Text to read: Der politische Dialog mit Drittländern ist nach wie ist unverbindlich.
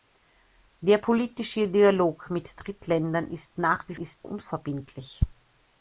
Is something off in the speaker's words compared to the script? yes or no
no